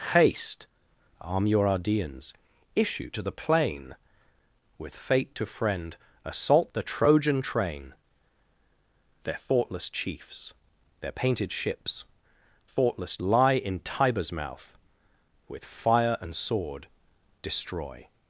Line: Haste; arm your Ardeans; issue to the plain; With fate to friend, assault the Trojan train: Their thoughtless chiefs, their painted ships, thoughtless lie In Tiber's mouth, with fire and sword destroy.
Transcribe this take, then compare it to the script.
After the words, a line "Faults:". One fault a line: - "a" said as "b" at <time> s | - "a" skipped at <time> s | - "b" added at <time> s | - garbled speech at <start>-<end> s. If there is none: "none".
Haste; arm your Ardeans; issue to the plain; With fate to friend, assault the Trojan train: Their thoughtless chiefs, their painted ships, thoughtless lie In Tiber's mouth, with fire and sword destroy.
Faults:
none